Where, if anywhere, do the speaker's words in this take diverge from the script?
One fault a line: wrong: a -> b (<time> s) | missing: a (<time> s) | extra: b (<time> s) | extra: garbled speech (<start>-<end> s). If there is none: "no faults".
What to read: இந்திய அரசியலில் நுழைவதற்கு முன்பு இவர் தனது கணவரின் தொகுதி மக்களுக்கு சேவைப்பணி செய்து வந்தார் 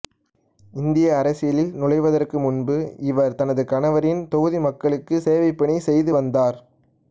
no faults